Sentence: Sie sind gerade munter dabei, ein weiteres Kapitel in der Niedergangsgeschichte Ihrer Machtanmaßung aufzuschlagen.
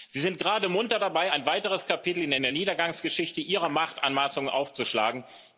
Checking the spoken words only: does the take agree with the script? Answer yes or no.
no